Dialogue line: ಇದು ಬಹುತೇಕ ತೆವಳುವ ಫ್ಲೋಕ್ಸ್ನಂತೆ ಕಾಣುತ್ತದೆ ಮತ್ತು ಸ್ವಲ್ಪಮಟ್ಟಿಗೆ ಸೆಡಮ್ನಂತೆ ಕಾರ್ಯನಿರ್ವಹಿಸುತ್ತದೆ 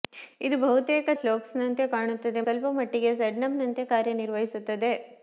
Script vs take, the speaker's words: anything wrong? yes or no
yes